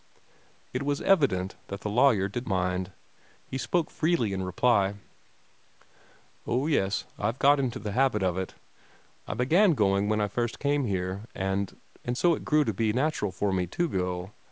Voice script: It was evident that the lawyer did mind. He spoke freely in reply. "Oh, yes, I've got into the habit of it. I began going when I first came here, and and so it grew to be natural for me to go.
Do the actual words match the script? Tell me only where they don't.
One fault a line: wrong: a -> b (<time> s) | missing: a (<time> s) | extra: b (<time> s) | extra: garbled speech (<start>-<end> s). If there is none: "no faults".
no faults